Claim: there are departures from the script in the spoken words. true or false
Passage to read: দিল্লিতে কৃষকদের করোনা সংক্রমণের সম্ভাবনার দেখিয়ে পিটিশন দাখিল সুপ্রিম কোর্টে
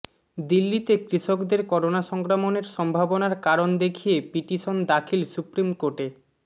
true